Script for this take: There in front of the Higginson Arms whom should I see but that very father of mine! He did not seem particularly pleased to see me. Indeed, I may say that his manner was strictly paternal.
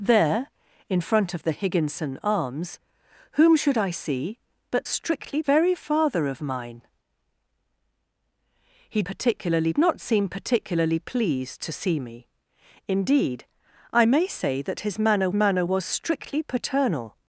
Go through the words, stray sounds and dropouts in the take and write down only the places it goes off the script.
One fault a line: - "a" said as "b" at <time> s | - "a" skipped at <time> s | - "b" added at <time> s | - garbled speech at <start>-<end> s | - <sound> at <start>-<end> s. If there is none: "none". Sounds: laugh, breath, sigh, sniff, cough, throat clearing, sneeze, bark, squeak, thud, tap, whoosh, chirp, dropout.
- "that" said as "strictly" at 4.9 s
- "did" said as "particularly" at 9.0 s
- "manner" added at 15.3 s